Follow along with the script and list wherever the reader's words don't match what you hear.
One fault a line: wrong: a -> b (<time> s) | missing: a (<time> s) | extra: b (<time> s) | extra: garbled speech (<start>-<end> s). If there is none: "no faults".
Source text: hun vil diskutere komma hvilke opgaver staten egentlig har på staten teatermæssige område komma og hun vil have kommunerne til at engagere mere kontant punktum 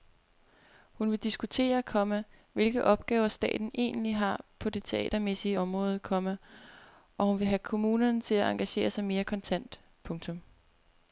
wrong: staten -> det (4.7 s)
extra: sig (8.9 s)